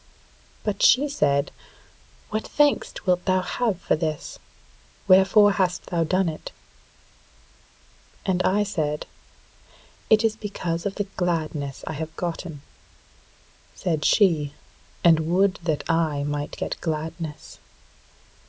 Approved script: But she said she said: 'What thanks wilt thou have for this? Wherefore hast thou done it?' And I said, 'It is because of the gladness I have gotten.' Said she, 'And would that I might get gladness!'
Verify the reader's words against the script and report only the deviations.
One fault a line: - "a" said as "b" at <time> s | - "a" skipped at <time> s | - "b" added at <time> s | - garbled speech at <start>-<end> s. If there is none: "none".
- "she said" skipped at 1.5 s